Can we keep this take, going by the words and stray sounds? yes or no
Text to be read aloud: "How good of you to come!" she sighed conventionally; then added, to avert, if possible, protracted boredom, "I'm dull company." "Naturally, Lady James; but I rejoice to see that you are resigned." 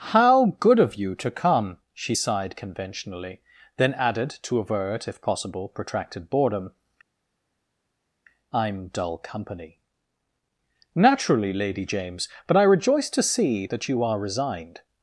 yes